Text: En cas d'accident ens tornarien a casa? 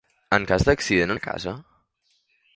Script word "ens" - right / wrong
wrong